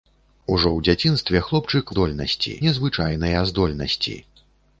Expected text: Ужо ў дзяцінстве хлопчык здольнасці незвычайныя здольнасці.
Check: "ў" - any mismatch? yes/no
no